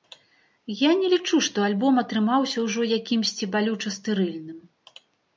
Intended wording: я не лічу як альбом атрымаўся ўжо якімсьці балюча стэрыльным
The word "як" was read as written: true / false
false